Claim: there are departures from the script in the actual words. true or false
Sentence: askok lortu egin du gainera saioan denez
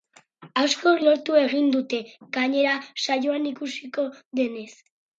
true